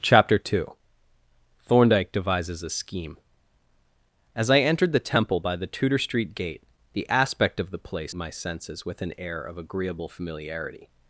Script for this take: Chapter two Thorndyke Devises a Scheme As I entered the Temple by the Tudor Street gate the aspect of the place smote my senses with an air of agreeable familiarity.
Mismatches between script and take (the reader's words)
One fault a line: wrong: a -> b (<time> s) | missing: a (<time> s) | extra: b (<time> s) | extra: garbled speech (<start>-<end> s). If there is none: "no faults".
missing: smote (8.2 s)